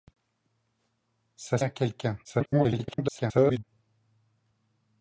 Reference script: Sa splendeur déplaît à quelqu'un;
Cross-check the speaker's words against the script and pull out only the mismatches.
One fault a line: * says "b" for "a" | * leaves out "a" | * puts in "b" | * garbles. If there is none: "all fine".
* leaves out "splendeur déplaît"
* garbles